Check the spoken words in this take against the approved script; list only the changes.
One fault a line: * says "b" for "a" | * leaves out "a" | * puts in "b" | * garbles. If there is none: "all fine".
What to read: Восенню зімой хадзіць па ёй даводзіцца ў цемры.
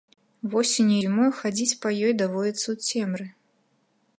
all fine